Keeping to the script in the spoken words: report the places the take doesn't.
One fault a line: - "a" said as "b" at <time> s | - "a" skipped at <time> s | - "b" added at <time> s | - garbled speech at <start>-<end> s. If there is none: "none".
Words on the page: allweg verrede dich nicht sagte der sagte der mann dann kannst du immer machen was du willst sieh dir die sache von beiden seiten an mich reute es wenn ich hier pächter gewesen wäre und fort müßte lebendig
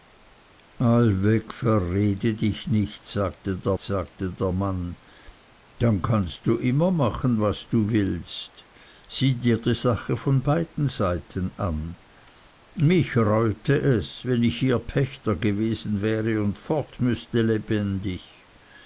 none